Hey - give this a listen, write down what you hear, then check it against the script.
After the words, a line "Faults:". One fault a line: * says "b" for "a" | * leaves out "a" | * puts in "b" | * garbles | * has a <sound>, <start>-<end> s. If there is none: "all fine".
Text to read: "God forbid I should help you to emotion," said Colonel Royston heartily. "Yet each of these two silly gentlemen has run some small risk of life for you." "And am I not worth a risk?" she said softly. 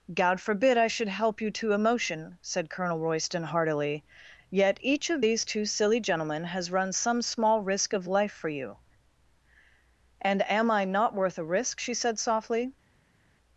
"God forbid I should help you to emotion," said Colonel Royston heartily. "Yet each of these two silly gentlemen has run some small risk of life for you." "And am I not worth a risk?" she said softly.
Faults:
all fine